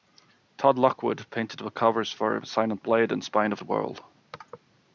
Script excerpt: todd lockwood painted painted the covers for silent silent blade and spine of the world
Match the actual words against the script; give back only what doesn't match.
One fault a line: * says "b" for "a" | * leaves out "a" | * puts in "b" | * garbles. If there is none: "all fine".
* leaves out "painted"
* leaves out "silent"